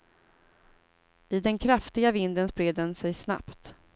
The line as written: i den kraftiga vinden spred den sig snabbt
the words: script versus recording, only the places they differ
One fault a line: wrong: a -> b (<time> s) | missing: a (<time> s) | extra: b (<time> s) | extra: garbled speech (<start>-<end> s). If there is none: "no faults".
no faults